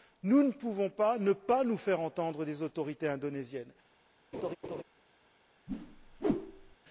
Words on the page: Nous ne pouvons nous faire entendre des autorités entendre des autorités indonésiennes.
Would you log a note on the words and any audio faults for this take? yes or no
yes